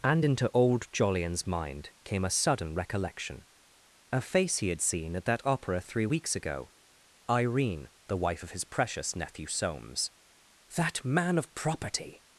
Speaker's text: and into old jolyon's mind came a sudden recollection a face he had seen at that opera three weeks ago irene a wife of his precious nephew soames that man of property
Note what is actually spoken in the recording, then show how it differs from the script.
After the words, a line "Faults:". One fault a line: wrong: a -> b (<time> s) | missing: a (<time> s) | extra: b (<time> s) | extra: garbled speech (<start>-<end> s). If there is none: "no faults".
and into old jolyon's mind came a sudden recollection a face he had seen at that opera three weeks ago irene the wife of his precious nephew soames that man of property
Faults:
wrong: a -> the (8.1 s)